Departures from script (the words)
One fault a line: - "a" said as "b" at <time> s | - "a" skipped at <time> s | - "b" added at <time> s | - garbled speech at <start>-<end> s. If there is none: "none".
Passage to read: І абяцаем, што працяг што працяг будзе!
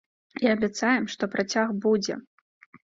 - "што працяг" skipped at 1.8 s